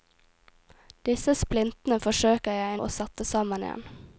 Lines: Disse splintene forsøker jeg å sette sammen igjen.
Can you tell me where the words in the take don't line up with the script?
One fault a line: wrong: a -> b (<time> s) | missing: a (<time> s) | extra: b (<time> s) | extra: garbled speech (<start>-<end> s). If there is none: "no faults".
no faults